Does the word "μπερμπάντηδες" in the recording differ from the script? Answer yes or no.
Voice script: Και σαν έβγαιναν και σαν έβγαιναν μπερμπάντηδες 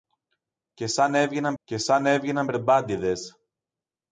no